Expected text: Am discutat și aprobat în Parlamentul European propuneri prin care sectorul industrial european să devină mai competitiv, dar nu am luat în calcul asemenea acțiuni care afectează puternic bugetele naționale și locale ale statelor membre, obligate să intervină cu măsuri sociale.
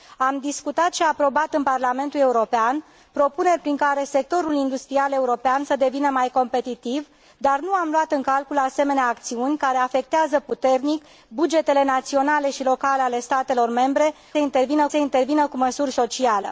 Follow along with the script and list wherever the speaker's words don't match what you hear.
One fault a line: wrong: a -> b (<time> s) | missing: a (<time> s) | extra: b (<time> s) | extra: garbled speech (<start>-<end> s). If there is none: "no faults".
wrong: obligate -> intervină (14.4 s)